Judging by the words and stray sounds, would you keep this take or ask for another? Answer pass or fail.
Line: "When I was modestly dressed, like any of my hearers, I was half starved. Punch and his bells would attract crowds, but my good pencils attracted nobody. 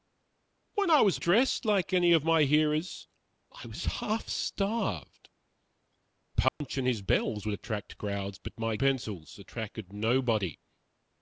fail